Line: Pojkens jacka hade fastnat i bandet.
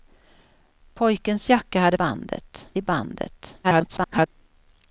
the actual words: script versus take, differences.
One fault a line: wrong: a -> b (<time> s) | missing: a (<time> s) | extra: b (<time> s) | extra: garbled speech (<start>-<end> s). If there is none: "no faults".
wrong: fastnat -> bandet (1.9 s)
extra: garbled speech (3.6-4.3 s)